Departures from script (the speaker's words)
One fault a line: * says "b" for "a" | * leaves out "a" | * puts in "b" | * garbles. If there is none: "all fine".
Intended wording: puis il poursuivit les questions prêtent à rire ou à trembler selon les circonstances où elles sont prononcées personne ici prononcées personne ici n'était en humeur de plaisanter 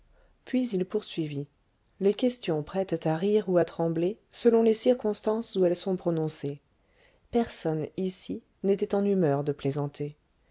* leaves out "prononcées personne ici"